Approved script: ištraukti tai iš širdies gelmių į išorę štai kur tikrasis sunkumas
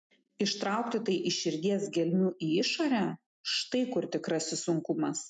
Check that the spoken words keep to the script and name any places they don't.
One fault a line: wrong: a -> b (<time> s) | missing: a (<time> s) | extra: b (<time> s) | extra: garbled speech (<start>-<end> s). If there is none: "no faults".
no faults